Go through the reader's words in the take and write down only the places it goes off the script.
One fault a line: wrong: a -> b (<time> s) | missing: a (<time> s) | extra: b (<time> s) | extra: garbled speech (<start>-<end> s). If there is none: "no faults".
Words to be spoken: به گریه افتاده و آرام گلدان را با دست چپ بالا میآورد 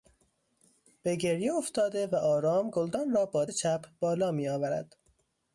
missing: دست (3.5 s)